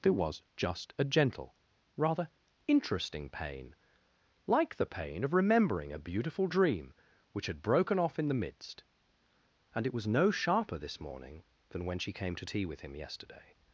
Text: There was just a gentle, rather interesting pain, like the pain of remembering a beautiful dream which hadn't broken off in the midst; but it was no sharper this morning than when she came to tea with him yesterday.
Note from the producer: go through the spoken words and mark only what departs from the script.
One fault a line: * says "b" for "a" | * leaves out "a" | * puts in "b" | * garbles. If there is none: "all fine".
* says "had" for "hadn't"
* says "and" for "but"